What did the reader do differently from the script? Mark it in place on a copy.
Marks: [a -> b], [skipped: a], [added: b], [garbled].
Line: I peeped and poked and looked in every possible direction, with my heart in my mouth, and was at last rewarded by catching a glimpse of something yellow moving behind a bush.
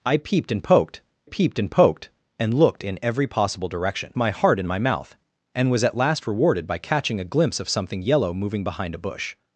I peeped and poked [added: peeped] and [added: poked and] looked in every possible direction, [skipped: with] my heart in my mouth, and was at last rewarded by catching a glimpse of something yellow moving behind a bush.